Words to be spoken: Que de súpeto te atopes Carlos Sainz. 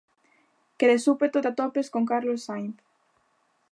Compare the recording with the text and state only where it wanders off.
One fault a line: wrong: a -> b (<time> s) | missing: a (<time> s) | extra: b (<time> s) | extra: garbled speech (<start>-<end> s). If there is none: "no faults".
extra: con (1.9 s)